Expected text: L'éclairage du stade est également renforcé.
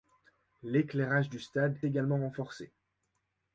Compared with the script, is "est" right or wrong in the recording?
wrong